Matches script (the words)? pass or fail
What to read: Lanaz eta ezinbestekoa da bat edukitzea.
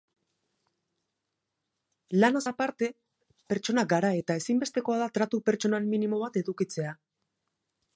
fail